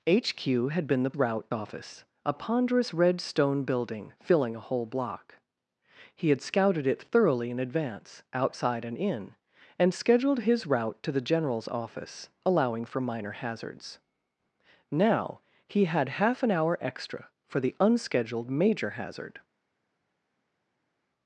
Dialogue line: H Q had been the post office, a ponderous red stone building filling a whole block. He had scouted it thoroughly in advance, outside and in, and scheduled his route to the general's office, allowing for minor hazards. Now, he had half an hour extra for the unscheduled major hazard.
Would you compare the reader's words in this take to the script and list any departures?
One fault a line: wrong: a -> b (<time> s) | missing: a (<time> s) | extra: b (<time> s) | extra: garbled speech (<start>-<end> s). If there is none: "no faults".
wrong: post -> route (1.2 s)